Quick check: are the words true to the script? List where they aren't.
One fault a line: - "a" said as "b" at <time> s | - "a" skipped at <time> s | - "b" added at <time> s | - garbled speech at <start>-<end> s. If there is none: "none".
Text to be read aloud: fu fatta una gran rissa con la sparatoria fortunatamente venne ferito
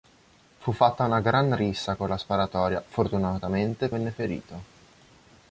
none